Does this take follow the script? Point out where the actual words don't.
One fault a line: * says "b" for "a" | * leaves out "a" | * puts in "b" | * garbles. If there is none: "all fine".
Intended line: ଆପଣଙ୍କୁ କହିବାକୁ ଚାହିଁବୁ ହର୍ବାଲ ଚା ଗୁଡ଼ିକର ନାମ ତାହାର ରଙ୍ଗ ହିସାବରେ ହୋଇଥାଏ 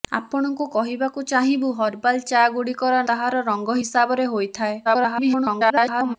* leaves out "ନାମ"
* garbles